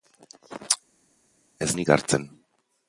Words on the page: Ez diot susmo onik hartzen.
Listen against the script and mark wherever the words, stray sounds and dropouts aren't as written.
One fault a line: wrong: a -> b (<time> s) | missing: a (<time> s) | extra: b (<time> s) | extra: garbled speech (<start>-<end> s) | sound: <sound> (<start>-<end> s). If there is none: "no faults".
missing: diot susmo (1.7 s)